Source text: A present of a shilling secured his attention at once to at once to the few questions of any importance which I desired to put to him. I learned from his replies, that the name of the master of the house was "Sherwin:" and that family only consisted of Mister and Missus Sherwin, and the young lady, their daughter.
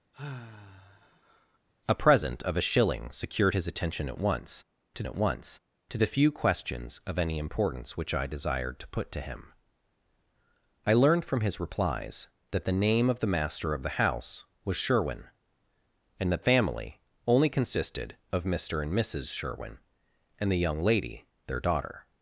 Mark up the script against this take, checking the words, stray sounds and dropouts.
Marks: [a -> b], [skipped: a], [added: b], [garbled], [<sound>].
[sigh] A present of a shilling secured his attention at once to at once to the few questions of any importance which I desired to put to him. I learned from his replies, that the name of the master of the house was "Sherwin:" and that family only consisted of Mister and Missus Sherwin, and the young lady, their daughter.